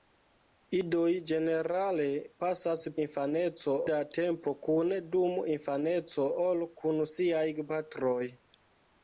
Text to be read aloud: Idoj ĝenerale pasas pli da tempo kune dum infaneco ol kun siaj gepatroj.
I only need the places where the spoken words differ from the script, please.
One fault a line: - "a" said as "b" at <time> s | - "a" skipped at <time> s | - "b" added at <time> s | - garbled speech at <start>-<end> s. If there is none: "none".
- "pli" said as "infaneco" at 3.1 s